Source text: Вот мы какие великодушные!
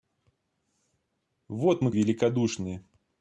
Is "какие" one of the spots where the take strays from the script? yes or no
yes